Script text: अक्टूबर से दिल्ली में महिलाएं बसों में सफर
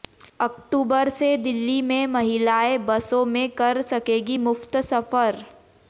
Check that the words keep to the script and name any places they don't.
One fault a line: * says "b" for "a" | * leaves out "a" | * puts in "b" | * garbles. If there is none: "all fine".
* puts in "कर सकेंगी मुफ्त"